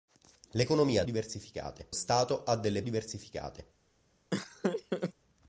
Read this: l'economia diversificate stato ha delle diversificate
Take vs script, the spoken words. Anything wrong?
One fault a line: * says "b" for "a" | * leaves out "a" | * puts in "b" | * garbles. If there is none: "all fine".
all fine